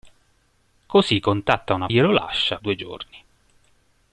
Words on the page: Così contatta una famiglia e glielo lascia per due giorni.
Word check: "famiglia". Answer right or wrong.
wrong